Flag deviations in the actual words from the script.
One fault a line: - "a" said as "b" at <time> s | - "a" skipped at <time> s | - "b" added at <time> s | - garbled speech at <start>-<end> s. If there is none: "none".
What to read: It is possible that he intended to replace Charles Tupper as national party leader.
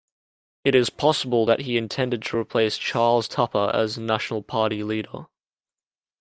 none